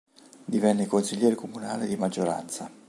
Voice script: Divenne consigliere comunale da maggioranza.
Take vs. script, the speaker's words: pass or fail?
fail